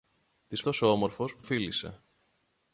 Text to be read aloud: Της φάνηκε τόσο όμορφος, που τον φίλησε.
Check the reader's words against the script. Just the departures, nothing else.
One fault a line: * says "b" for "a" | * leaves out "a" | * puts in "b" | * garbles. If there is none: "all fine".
* leaves out "φάνηκε"
* leaves out "τον"